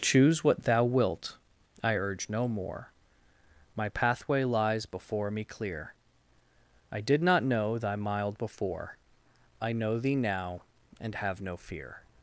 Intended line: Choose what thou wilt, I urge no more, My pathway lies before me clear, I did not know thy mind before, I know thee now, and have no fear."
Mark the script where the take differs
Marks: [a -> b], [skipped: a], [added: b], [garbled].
Choose what thou wilt, I urge no more, My pathway lies before me clear, I did not know thy [mind -> mild] before, I know thee now, and have no fear."